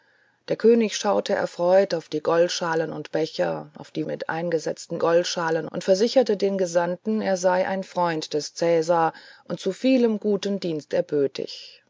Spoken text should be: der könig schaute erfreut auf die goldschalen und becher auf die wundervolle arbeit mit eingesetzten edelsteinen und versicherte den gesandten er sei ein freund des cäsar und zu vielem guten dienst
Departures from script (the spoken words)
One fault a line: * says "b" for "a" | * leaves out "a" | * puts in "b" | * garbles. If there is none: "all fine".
* leaves out "wundervolle arbeit"
* says "goldschalen" for "edelsteinen"